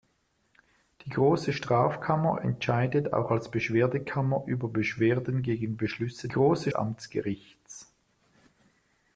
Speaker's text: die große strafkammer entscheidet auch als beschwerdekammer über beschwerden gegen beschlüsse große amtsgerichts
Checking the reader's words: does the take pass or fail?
pass